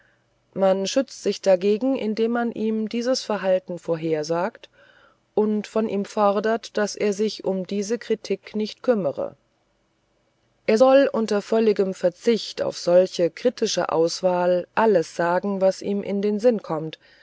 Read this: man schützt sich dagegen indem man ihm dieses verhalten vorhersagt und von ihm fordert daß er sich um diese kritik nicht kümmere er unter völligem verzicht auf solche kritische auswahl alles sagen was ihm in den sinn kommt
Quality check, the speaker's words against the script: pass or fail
fail